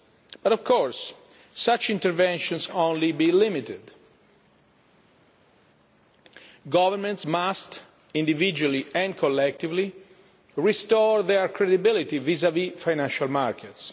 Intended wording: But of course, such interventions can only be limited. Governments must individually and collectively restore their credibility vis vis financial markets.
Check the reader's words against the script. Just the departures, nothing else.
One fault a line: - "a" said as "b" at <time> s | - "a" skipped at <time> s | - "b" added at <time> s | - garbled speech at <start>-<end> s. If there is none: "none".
- "can" skipped at 2.7 s